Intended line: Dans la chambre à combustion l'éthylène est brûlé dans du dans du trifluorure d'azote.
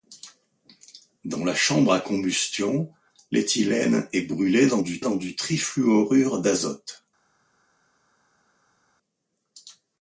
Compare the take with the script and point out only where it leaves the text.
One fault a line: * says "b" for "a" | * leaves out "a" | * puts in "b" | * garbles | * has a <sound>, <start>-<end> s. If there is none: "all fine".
all fine